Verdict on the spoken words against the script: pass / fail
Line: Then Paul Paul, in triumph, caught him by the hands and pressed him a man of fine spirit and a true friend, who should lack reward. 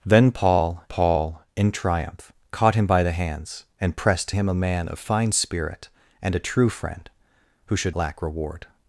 pass